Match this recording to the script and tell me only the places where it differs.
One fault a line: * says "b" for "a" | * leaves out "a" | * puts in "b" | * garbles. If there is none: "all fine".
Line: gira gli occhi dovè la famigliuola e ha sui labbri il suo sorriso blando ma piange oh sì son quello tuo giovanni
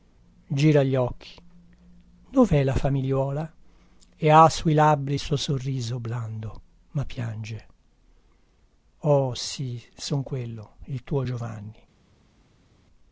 * puts in "il"